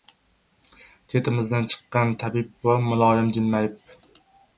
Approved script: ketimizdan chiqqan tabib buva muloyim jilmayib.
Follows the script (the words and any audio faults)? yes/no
yes